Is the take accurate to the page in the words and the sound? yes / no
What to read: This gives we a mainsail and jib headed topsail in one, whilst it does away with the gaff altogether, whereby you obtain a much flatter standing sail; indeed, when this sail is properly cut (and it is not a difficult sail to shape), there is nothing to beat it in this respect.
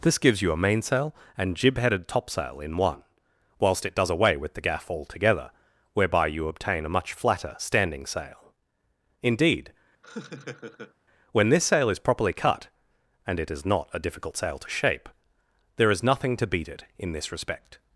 no